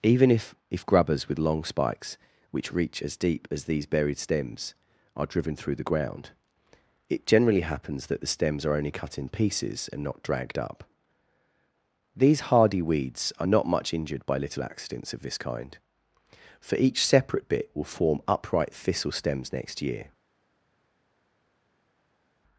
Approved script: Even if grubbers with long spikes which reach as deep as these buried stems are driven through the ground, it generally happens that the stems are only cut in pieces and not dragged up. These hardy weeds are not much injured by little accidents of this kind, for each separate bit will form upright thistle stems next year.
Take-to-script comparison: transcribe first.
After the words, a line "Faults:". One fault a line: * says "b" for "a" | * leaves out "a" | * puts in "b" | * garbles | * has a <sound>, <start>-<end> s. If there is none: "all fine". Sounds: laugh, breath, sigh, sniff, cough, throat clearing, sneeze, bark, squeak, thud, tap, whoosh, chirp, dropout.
Even if if grubbers with long spikes which reach as deep as these buried stems are driven through the ground, it generally happens that the stems are only cut in pieces and not dragged up. These hardy weeds are not much injured by little accidents of this kind, for each separate bit will form upright thistle stems next year.
Faults:
* puts in "if"